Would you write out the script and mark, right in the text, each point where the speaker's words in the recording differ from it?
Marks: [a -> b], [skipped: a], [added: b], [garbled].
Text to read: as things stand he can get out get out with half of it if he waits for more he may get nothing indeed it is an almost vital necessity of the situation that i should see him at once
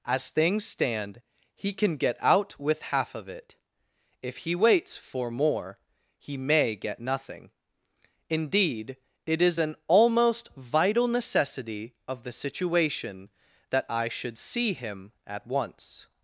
as things stand he can get out [skipped: get out] with half of it if he waits for more he may get nothing indeed it is an almost vital necessity of the situation that i should see him at once